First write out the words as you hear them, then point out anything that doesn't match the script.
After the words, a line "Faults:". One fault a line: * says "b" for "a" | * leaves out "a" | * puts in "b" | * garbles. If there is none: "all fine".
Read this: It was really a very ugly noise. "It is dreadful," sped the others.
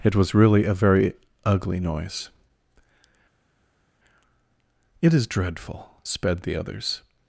It was really a very ugly noise. "It is dreadful," sped the others.
Faults:
all fine